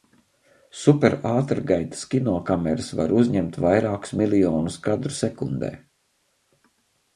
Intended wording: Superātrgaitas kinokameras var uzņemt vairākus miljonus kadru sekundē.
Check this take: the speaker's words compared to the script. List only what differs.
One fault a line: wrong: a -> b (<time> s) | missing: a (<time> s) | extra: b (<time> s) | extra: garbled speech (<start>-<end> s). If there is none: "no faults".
no faults